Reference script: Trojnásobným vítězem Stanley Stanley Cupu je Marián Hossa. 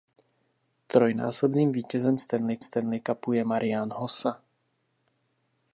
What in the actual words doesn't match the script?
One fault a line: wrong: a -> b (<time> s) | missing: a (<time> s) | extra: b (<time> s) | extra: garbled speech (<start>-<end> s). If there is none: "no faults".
no faults